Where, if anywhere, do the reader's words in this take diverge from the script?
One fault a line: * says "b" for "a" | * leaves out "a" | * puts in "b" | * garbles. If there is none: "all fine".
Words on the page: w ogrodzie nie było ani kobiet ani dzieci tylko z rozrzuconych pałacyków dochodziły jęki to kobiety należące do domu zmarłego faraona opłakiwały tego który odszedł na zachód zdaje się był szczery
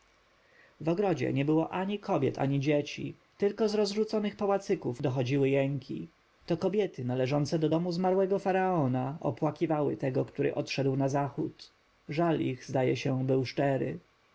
* puts in "żal ich"